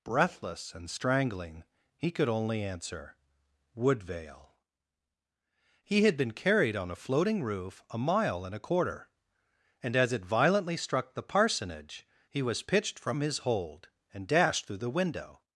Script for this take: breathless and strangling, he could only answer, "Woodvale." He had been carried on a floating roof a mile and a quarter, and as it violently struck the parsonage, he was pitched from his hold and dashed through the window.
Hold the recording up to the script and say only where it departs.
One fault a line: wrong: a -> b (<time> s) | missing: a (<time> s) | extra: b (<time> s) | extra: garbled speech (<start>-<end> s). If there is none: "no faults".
no faults